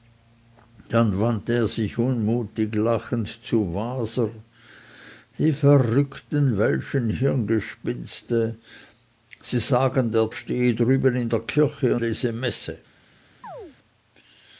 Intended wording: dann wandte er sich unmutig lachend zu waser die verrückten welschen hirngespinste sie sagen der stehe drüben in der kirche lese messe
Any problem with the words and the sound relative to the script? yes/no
yes